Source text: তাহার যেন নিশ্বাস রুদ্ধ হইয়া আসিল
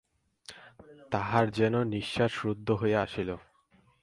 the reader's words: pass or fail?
pass